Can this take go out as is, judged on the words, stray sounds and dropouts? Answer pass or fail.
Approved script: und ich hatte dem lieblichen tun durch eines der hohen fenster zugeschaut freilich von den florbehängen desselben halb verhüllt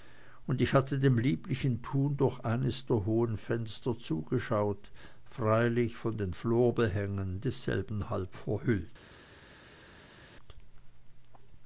pass